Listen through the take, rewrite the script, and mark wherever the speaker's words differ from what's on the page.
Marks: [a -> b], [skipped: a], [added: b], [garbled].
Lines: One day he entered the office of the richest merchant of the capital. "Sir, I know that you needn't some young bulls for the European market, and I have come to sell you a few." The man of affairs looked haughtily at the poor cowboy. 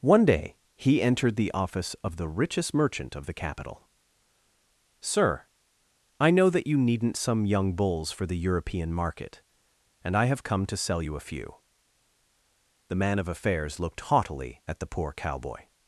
One day he entered the office of the richest merchant of the capital. "Sir, I know that you needn't some young bulls for the European market, and I have come to sell you a few." The man of affairs looked haughtily at the poor cowboy.